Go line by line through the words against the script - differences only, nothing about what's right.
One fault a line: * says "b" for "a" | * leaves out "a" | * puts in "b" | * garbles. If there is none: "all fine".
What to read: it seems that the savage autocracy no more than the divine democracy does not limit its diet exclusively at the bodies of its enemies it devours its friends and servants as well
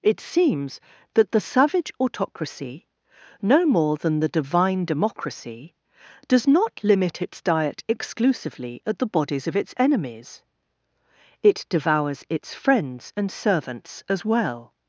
all fine